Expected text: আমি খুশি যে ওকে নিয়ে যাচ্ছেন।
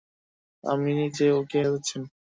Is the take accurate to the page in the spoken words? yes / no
no